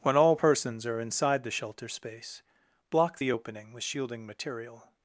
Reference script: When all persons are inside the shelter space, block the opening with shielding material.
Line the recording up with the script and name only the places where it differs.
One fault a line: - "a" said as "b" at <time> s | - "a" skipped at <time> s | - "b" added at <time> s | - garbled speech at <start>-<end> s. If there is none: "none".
none